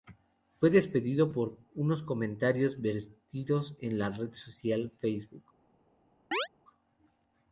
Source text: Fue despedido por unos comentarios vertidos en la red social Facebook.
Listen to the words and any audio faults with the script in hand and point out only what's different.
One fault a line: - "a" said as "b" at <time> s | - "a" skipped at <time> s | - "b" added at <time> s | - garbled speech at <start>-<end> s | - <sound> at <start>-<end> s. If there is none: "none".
- chirp at 6.3-6.5 s